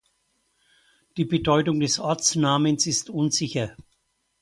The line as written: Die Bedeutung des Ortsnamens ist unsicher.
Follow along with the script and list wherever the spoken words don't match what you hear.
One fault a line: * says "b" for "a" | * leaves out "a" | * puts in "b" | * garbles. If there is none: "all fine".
all fine